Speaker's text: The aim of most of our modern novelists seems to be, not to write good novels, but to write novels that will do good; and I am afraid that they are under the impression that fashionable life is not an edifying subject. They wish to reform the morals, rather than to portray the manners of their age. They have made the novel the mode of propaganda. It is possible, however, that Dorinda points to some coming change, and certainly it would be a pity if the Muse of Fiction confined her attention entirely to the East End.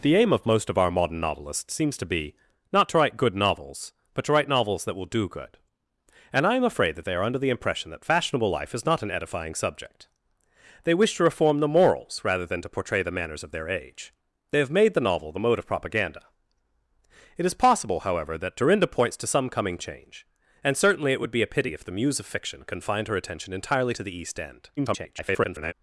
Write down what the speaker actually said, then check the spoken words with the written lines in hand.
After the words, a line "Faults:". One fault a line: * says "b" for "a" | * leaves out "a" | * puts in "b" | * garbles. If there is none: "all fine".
The aim of most of our modern novelists seems to be, not to write good novels, but to write novels that will do good; and I am afraid that they are under the impression that fashionable life is not an edifying subject. They wish to reform the morals, rather than to portray the manners of their age. They have made the novel the mode of propaganda. It is possible, however, that Dorinda points to some coming change, and certainly it would be a pity if the Muse of Fiction confined her attention entirely to the East End. [garbled]
Faults:
* garbles